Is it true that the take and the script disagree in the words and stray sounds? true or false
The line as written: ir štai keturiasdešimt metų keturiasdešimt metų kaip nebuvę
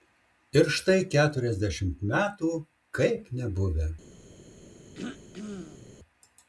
true